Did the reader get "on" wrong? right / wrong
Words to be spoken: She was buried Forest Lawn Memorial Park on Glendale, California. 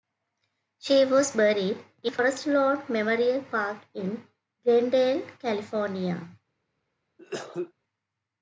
wrong